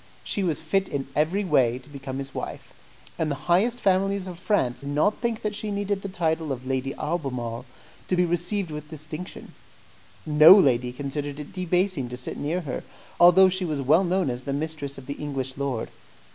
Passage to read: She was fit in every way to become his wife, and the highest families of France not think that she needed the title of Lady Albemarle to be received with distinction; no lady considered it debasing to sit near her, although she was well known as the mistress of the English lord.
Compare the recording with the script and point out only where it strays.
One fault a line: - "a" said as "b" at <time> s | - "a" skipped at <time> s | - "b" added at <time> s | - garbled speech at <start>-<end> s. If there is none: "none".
none